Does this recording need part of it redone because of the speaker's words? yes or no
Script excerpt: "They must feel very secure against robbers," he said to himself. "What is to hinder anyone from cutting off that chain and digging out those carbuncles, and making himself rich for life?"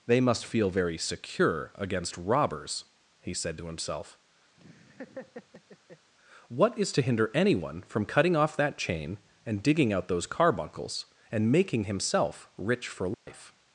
no